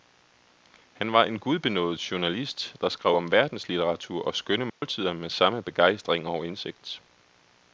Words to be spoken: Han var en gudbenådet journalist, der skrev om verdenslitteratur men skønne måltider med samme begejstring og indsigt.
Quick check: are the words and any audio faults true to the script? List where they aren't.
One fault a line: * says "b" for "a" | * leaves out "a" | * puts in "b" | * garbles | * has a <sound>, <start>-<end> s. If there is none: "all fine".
* says "og" for "men"
* has a dropout, 4.7-4.8 s